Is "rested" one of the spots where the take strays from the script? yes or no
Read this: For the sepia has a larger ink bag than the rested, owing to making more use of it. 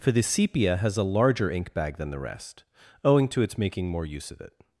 yes